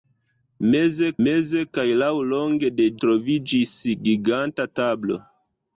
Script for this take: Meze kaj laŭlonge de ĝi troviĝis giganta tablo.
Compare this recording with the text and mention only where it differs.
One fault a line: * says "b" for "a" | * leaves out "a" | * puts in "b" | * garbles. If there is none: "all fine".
* puts in "meze"
* leaves out "ĝi"